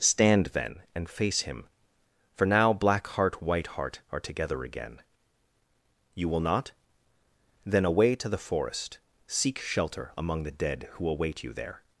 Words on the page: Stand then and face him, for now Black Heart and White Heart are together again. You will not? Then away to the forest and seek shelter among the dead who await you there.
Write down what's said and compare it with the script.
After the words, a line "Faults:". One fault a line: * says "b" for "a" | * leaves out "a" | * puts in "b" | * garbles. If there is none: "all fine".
Stand then and face him, for now Black Heart White Heart are together again. You will not? Then away to the forest seek shelter among the dead who await you there.
Faults:
* leaves out "and"
* leaves out "and"